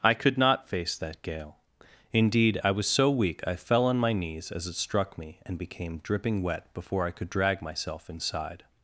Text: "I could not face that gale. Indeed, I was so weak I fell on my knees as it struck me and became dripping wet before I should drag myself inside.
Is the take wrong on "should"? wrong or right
wrong